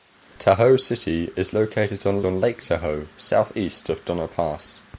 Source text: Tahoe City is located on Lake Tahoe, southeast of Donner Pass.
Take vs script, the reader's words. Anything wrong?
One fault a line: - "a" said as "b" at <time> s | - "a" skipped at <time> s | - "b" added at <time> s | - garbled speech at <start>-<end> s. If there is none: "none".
- "on" added at 2.2 s